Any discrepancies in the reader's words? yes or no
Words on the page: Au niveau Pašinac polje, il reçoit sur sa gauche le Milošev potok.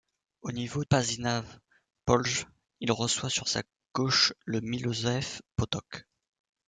no